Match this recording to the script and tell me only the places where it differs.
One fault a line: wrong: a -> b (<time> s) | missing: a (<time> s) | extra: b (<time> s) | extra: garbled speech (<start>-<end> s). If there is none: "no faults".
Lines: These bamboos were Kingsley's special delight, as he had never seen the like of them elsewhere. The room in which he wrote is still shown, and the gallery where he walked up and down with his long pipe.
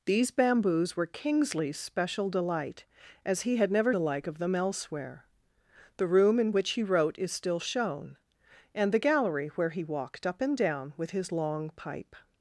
missing: seen (3.9 s)